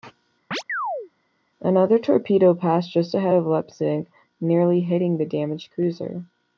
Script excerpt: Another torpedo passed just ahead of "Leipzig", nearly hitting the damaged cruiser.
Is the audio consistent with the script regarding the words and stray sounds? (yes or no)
no